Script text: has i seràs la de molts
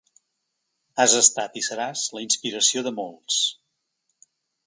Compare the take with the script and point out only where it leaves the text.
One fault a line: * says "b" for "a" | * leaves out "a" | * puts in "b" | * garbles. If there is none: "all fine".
* puts in "estat"
* puts in "inspiració"